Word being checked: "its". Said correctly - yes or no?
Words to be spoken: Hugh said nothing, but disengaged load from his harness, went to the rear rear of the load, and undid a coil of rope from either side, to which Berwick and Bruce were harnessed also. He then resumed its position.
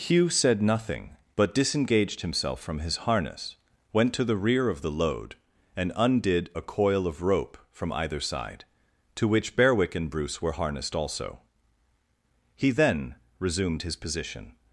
no